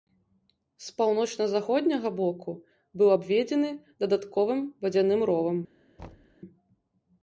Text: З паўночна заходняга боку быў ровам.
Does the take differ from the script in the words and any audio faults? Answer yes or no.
yes